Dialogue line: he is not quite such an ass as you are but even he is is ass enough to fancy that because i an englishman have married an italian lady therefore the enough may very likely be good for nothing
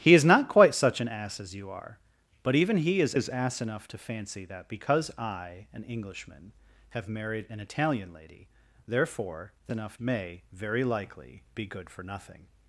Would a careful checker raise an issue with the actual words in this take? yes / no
no